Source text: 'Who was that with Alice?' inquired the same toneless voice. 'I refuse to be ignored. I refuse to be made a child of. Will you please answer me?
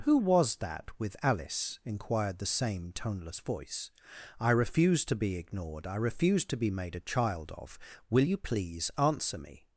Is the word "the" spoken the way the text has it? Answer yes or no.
yes